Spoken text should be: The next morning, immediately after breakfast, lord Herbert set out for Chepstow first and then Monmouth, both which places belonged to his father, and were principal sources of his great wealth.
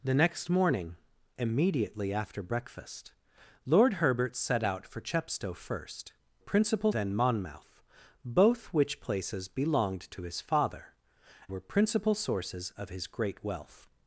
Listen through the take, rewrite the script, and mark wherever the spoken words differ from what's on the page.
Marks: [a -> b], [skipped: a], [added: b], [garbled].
The next morning, immediately after breakfast, lord Herbert set out for Chepstow first [and -> principal] then Monmouth, both which places belonged to his father, [skipped: and] were principal sources of his great wealth.